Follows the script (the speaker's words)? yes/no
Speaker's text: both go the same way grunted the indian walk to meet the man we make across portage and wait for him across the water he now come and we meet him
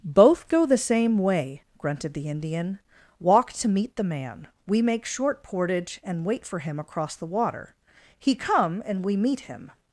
no